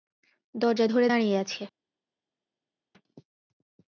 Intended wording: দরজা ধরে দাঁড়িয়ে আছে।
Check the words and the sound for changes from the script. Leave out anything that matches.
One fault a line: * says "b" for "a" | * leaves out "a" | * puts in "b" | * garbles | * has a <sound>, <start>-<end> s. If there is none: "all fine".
all fine